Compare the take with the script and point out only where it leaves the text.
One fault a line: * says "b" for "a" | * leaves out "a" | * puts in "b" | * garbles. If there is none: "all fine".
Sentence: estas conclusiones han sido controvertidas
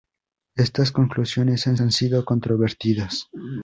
* puts in "han"